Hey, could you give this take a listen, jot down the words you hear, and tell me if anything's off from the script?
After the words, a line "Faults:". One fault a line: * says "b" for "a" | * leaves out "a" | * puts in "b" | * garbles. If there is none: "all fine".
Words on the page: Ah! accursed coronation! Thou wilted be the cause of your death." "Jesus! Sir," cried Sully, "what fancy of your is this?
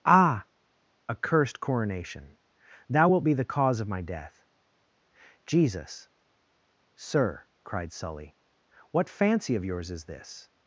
Ah! accursed coronation! Thou wilt be the cause of my death." "Jesus! Sir," cried Sully, "what fancy of yours is this?
Faults:
* says "wilt" for "wilted"
* says "my" for "your"
* says "yours" for "your"